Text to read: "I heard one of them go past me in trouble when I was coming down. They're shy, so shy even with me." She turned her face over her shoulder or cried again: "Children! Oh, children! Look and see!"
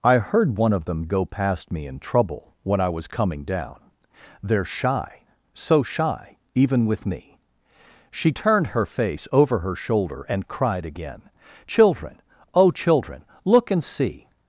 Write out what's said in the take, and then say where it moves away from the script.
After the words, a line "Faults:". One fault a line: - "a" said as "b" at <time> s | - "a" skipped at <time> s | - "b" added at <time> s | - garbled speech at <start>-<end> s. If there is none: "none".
"I heard one of them go past me in trouble when I was coming down. They're shy, so shy even with me." She turned her face over her shoulder and cried again: "Children! Oh, children! Look and see!"
Faults:
- "or" said as "and" at 10.3 s